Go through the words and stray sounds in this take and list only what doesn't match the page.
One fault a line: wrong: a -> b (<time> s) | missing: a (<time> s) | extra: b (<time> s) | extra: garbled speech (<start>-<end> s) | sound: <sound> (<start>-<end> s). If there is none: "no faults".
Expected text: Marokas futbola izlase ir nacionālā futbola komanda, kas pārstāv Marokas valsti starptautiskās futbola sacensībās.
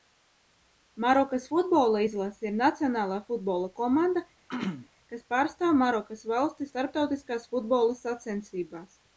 sound: throat clearing (4.5-4.9 s)